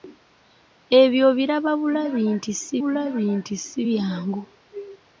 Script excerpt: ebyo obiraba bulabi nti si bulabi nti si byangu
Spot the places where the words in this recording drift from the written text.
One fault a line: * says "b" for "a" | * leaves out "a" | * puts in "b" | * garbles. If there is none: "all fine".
all fine